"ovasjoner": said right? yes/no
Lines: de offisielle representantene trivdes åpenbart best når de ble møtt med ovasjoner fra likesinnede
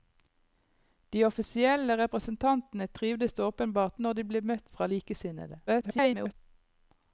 no